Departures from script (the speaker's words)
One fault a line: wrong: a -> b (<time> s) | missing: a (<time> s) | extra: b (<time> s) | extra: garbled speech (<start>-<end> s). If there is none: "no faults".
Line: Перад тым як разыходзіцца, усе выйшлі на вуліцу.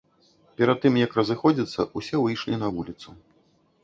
no faults